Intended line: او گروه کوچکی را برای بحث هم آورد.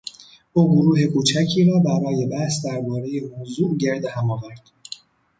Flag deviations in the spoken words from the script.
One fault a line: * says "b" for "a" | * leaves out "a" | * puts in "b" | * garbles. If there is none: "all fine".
* puts in "دربارهی موضوع گرد"